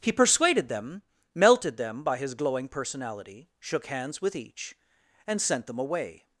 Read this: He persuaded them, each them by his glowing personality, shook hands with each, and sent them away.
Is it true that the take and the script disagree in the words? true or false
true